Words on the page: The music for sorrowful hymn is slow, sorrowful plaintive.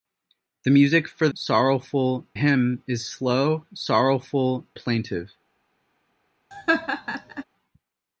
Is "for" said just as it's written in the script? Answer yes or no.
yes